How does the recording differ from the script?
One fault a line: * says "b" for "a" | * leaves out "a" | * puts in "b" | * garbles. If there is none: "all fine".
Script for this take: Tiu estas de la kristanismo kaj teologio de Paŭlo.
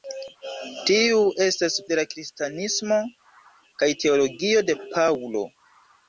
all fine